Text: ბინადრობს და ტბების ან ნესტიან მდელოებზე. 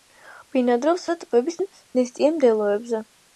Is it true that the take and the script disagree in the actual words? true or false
false